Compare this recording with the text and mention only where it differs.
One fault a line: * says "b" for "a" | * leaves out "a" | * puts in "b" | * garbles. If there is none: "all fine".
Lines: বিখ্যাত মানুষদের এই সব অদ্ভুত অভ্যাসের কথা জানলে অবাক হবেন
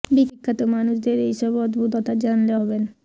* leaves out "অভ্যাসের"
* leaves out "অবাক"